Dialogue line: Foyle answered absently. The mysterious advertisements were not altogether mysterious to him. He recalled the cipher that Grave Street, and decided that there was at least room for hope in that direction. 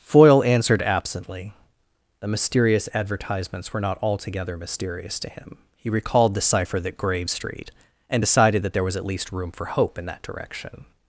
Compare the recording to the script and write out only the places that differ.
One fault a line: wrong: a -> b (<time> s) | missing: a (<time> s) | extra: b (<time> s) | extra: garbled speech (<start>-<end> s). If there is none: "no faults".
no faults